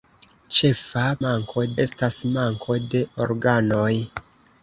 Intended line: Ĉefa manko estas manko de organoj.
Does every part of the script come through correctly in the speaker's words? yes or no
yes